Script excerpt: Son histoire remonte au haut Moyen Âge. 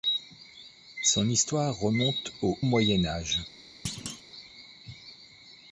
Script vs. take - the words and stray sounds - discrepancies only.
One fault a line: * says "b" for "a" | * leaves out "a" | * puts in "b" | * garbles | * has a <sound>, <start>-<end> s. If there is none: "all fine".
* leaves out "haut"
* has a thud, 3.8-4.2 s